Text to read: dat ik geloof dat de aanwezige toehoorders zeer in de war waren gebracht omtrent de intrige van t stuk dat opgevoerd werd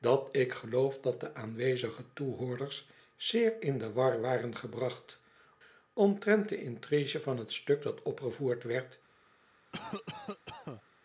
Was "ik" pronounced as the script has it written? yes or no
yes